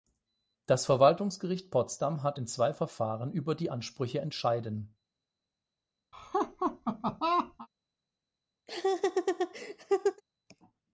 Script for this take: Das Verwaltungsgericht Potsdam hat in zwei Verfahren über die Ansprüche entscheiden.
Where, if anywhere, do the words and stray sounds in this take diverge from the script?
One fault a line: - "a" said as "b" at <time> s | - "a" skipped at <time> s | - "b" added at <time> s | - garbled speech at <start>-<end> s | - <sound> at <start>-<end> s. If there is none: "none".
- laugh at 6.1-7.7 s
- laugh at 8.7-10.2 s